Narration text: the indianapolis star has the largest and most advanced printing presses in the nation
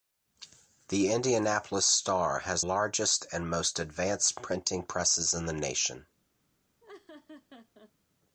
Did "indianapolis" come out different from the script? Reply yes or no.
no